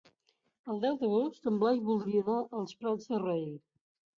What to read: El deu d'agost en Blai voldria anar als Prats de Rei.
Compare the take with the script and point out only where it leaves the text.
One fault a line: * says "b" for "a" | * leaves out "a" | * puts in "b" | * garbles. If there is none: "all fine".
all fine